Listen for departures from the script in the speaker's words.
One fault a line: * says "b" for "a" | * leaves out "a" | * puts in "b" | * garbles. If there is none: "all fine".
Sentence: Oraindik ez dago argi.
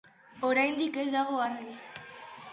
all fine